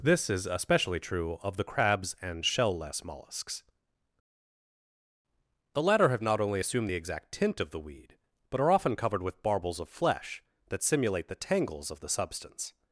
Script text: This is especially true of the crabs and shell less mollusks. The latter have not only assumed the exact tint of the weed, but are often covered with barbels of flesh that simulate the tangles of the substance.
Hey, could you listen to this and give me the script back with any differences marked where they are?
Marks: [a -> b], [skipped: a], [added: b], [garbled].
This is especially true of the crabs and shell less mollusks. The latter have not only assumed the exact tint of the weed, but are often covered with barbels of flesh that simulate the tangles of the substance.